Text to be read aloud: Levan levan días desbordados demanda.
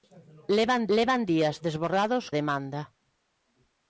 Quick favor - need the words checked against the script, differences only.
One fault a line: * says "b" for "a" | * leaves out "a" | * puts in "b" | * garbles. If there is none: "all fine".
all fine